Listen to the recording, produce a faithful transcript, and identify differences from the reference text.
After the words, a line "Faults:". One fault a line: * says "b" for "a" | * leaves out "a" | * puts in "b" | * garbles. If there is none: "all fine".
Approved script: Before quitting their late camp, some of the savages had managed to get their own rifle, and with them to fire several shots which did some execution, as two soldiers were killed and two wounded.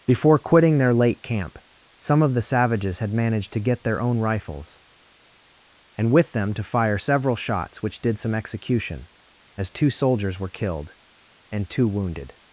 Before quitting their late camp, some of the savages had managed to get their own rifles, and with them to fire several shots which did some execution, as two soldiers were killed and two wounded.
Faults:
* says "rifles" for "rifle"